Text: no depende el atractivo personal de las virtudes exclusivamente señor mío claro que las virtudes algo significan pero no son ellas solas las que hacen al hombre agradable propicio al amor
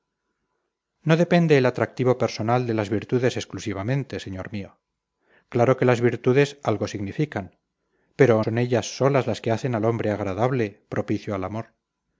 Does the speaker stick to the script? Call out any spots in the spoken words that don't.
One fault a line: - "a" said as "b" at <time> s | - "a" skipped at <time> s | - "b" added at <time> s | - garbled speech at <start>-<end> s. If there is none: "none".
- "no" skipped at 8.4 s